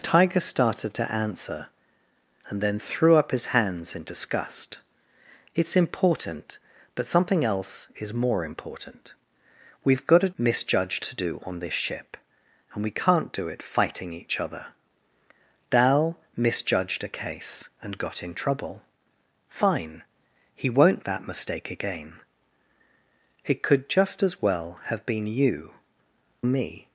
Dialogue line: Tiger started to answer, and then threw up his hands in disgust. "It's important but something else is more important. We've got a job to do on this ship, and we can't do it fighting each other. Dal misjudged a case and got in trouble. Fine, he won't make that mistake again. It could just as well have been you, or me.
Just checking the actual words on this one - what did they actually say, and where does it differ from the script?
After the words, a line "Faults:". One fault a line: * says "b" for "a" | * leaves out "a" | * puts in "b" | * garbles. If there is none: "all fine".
Tiger started to answer, and then threw up his hands in disgust. "It's important but something else is more important. We've got a misjudged to do on this ship, and we can't do it fighting each other. Dal misjudged a case and got in trouble. Fine, he won't that mistake again. It could just as well have been you, me.
Faults:
* says "misjudged" for "job"
* leaves out "make"
* leaves out "or"